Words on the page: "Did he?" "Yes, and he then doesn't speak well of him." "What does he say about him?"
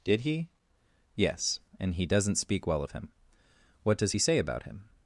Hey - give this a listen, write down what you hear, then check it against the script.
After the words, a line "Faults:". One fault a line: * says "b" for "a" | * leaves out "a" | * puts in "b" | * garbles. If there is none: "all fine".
"Did he?" "Yes, and he doesn't speak well of him." "What does he say about him?"
Faults:
* leaves out "then"